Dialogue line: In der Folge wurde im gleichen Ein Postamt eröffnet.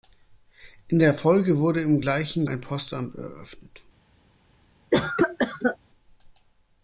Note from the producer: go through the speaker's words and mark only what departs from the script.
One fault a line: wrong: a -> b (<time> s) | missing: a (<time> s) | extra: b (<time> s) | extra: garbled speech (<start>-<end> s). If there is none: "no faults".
no faults